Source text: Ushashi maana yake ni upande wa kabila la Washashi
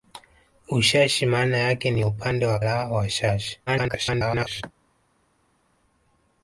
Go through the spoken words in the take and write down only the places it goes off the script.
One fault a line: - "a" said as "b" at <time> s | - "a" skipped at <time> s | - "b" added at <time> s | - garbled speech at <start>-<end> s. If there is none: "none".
- "kabila" skipped at 2.6 s
- garbled speech at 3.7-4.6 s